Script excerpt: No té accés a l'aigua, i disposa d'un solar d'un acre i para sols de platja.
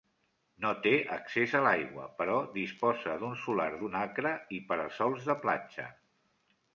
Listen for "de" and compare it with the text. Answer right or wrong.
right